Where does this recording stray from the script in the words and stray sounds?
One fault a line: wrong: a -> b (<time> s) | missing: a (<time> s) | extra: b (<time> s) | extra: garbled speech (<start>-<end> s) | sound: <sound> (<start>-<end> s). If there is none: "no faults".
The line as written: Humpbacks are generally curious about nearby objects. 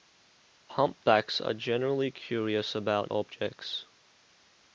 missing: nearby (3.1 s)